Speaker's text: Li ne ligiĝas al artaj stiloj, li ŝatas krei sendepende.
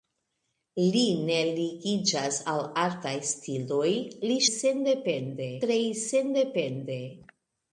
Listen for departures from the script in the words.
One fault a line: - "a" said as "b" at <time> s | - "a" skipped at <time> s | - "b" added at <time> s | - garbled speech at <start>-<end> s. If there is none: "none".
- "ŝatas" said as "sendepende" at 4.6 s